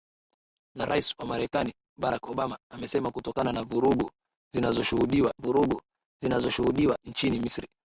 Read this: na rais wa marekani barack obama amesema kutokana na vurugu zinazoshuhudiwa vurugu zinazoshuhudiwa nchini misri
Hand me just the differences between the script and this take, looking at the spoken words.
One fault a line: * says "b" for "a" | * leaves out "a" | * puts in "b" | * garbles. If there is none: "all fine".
all fine